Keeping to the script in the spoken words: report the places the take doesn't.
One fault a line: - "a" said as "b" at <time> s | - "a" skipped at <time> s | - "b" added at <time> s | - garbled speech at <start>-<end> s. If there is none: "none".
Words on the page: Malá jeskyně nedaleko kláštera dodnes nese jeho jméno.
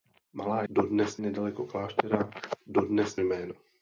- "jeskyně" said as "dodnes" at 0.7 s
- "nese jeho" skipped at 3.2 s